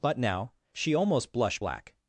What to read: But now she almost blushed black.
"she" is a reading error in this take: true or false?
false